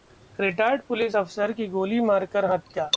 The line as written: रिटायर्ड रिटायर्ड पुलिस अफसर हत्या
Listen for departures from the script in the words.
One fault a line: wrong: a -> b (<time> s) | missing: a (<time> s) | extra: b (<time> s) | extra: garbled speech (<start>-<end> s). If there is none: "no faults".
missing: रिटायर्ड (0.8 s)
extra: की गोली मारकर (1.5 s)